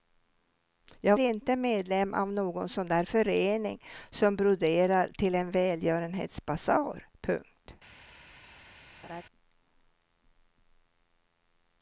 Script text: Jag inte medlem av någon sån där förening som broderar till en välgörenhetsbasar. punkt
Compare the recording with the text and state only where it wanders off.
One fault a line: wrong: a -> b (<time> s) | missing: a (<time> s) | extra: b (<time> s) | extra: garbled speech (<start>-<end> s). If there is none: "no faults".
no faults